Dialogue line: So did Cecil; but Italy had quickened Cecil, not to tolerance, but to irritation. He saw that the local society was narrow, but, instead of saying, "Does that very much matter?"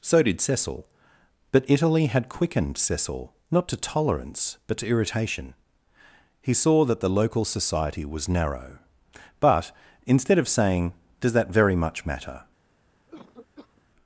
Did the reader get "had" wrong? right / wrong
right